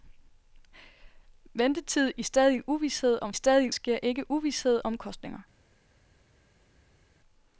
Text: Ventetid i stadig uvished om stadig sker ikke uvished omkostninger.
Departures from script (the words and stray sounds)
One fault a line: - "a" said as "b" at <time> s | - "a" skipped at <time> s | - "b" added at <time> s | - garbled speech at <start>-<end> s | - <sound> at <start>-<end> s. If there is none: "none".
none